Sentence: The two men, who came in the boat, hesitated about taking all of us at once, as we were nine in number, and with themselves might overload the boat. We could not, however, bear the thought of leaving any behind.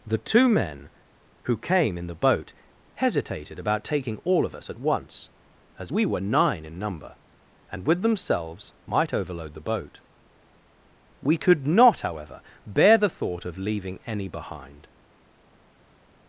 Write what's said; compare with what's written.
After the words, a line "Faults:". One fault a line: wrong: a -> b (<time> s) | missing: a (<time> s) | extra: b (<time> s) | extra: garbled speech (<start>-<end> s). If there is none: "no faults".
The two men, who came in the boat, hesitated about taking all of us at once, as we were nine in number, and with themselves might overload the boat. We could not, however, bear the thought of leaving any behind.
Faults:
no faults